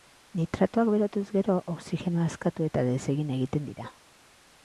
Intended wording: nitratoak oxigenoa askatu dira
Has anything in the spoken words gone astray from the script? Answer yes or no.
yes